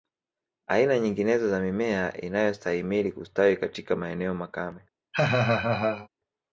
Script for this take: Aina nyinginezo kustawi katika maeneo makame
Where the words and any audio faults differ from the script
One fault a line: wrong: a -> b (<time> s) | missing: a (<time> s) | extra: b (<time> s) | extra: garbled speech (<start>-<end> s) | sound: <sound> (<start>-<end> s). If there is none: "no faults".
extra: za mimea inayostahimili (1.5 s)
sound: laugh (5.1-6.1 s)